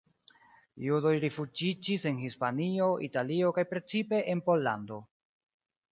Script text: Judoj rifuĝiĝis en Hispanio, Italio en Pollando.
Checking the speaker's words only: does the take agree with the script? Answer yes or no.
no